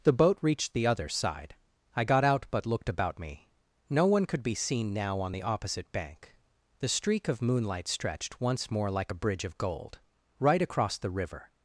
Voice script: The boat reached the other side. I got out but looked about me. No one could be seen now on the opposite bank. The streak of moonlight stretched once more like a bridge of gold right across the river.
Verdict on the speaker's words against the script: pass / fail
pass